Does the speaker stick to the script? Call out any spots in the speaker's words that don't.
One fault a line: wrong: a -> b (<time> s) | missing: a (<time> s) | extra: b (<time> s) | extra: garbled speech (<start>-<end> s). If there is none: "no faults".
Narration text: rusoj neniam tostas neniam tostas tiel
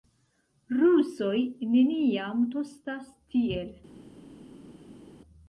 missing: neniam tostas (3.1 s)